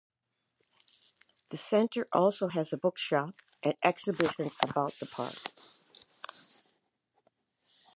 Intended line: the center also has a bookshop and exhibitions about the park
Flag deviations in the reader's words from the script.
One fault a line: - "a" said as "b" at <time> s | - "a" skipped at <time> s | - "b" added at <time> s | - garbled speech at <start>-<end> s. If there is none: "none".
none